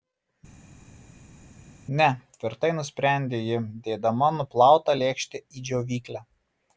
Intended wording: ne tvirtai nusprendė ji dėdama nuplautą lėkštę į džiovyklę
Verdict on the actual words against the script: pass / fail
pass